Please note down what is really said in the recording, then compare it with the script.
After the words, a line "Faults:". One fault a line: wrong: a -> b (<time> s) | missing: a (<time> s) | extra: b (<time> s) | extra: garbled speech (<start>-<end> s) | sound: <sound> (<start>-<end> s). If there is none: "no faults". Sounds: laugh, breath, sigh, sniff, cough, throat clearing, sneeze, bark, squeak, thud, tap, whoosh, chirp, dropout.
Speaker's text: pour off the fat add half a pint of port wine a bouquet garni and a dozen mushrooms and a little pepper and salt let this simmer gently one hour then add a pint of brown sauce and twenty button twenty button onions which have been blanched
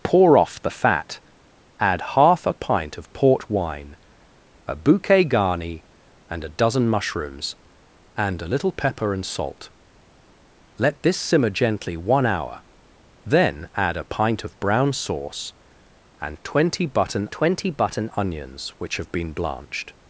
pour off the fat add half a pint of port wine a bouquet garni and a dozen mushrooms and a little pepper and salt let this simmer gently one hour then add a pint of brown sauce and twenty button twenty button onions which have been blanched
Faults:
no faults